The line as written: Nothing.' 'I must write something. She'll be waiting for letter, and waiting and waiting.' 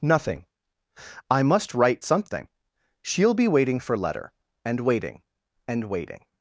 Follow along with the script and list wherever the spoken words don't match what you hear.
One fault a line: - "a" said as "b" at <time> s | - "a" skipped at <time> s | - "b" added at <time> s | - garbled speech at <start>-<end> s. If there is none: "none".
none